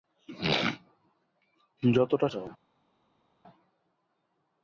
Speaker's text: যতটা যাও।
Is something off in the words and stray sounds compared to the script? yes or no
no